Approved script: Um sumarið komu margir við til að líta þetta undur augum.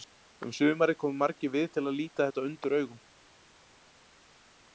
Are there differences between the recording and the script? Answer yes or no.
no